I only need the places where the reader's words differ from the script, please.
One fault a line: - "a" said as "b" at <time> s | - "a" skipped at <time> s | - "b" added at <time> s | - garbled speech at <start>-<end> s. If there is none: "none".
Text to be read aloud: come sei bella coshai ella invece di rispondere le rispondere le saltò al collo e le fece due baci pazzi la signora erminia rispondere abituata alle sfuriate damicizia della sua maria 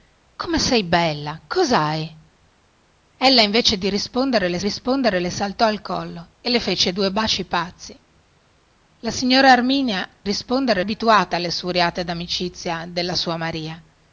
none